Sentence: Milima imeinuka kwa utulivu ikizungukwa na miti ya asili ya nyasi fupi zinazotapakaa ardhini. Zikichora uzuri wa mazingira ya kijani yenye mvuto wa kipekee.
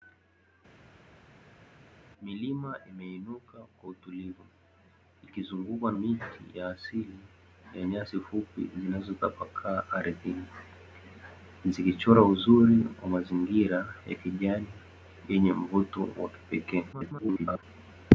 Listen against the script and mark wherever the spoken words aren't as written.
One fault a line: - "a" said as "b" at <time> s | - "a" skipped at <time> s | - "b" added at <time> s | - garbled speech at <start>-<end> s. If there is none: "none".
- "na" skipped at 5.9 s
- garbled speech at 16.9-17.6 s